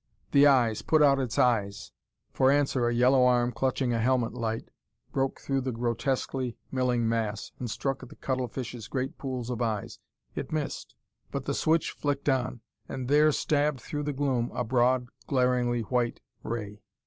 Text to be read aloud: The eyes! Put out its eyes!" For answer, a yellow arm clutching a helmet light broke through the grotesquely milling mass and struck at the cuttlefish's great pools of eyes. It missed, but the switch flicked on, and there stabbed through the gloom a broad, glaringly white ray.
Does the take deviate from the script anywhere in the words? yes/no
no